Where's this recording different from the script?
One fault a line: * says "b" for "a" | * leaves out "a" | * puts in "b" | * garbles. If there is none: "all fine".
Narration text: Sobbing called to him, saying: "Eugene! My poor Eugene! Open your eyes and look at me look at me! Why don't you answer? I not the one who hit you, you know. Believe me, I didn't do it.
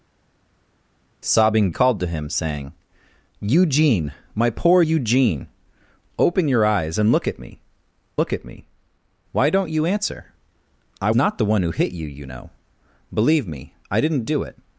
all fine